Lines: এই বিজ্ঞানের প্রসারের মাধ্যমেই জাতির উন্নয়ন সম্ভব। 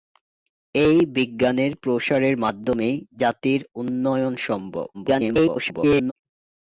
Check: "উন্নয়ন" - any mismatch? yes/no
no